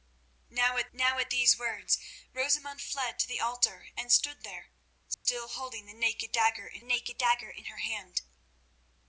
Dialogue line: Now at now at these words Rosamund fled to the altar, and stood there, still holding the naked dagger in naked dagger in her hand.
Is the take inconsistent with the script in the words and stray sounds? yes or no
yes